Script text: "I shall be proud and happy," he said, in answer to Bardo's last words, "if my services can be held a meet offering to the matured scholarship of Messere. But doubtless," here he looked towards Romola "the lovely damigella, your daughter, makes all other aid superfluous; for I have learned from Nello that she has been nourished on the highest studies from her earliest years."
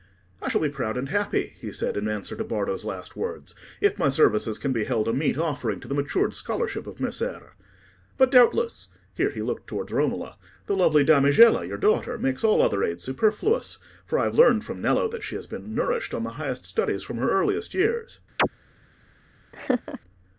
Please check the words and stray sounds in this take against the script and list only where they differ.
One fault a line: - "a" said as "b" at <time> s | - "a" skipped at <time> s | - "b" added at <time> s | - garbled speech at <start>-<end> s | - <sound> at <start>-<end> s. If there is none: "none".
- chirp at 18.4-18.5 s
- laugh at 19.5-20.0 s